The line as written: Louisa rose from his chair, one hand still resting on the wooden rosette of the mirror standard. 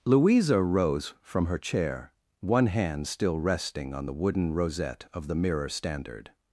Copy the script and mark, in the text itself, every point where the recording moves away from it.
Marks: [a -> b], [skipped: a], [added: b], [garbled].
Louisa rose from [his -> her] chair, one hand still resting on the wooden rosette of the mirror standard.